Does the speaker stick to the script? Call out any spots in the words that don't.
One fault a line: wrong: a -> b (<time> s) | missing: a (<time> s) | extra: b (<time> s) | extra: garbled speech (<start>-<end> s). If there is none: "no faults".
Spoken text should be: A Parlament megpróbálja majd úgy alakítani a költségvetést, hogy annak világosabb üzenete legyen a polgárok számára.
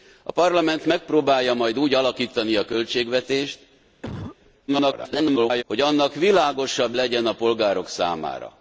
extra: garbled speech (4.7-5.6 s)
missing: üzenete (7.0 s)